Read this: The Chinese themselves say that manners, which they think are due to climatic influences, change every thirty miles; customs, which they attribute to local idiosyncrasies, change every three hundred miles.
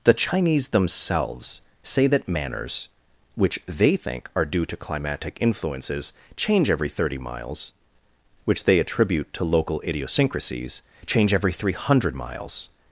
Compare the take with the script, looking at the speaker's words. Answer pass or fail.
fail